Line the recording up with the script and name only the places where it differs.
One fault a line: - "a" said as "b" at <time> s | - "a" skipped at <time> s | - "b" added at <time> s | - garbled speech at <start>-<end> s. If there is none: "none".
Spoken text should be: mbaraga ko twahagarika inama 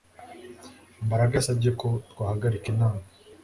- "yasabye" added at 1.4 s